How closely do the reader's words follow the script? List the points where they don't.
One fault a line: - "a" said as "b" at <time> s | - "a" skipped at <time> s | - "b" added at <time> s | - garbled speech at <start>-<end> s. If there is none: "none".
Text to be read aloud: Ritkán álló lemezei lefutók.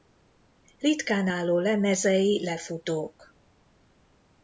none